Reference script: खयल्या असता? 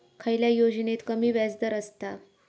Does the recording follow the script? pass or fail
fail